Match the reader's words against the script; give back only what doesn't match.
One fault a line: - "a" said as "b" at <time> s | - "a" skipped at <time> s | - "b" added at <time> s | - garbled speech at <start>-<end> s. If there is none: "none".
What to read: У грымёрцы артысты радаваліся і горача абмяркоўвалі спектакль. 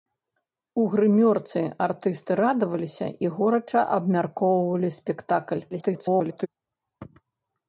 - garbled speech at 5.7-6.5 s